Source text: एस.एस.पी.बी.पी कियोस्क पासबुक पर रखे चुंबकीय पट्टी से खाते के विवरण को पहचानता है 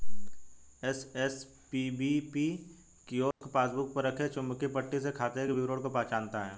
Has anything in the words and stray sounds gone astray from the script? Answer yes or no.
yes